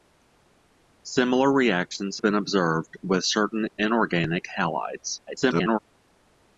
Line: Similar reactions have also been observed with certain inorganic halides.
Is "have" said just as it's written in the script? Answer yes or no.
no